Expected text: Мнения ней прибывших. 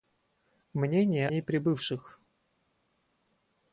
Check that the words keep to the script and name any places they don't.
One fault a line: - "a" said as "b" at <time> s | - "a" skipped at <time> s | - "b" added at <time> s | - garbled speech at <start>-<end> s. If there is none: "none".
none